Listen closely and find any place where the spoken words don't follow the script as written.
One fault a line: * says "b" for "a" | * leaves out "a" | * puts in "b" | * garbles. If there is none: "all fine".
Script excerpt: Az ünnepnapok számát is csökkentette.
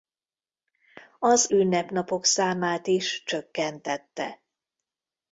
all fine